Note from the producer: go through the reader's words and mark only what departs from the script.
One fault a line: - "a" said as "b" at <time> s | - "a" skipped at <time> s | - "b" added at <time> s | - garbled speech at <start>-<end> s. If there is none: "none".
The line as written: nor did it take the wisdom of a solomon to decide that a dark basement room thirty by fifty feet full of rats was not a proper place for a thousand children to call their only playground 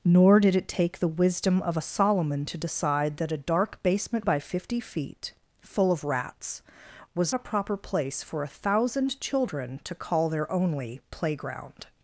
- "room thirty" skipped at 4.2 s
- "not" skipped at 7.3 s